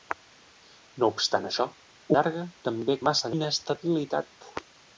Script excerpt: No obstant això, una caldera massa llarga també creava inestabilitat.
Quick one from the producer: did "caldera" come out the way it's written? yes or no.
no